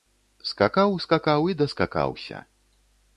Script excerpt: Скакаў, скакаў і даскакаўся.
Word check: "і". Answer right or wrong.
right